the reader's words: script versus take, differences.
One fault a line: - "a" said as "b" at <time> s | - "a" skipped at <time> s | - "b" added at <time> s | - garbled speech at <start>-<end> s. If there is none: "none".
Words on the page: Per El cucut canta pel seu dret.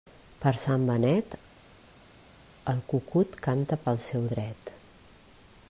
- "Sant Benet" added at 0.6 s